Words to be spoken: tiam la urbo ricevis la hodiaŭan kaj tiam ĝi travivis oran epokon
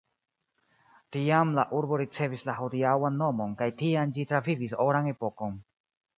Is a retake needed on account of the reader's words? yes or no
yes